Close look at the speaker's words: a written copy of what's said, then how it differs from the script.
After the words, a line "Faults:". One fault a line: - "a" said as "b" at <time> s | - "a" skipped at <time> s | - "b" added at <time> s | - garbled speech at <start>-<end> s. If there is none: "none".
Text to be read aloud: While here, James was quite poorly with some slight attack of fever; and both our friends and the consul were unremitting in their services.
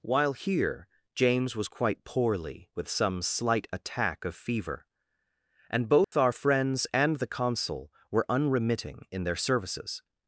While here, James was quite poorly with some slight attack of fever; and both our friends and the consul were unremitting in their services.
Faults:
none